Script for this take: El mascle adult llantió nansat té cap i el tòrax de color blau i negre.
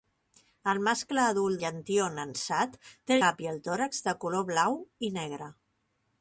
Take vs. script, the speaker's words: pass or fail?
pass